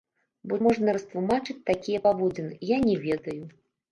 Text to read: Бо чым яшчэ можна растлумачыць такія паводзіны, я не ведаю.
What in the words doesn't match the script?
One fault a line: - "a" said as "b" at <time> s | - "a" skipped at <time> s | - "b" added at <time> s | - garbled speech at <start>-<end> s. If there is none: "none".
- "чым яшчэ" skipped at 0.6 s